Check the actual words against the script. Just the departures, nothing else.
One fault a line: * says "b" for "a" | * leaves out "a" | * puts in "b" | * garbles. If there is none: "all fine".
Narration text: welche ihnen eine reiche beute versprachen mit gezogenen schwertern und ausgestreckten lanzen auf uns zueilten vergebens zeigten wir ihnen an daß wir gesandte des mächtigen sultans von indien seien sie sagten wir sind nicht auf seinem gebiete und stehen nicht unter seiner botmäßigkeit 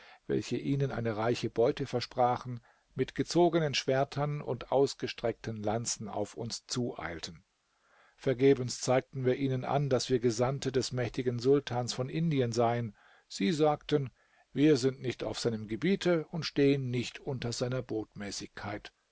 all fine